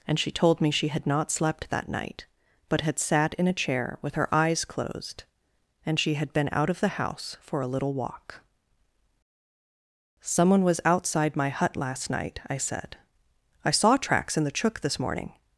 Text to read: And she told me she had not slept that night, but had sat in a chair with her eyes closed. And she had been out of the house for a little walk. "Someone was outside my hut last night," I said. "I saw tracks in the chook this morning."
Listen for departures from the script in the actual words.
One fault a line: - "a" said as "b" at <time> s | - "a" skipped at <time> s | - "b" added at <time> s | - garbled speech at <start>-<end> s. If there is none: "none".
none